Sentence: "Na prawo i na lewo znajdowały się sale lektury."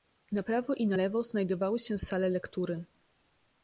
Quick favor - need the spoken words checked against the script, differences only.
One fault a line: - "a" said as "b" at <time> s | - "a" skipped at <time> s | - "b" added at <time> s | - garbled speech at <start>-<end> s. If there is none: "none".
none